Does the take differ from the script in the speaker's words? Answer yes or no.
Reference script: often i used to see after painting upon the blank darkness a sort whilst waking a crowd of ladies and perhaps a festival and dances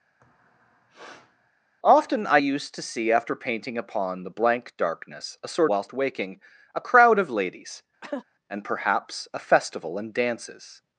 no